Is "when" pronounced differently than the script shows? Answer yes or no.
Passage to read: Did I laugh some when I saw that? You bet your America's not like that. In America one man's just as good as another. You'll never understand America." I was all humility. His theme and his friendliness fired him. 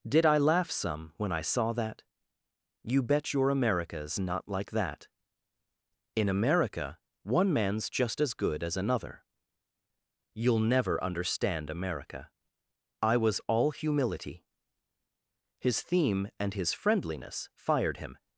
no